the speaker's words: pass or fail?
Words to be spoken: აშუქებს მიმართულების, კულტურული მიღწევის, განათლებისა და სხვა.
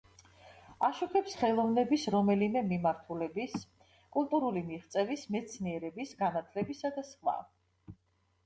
fail